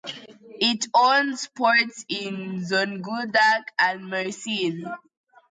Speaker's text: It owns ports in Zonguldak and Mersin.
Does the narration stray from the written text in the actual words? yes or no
no